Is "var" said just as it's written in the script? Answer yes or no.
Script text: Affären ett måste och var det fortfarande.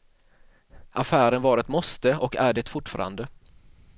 no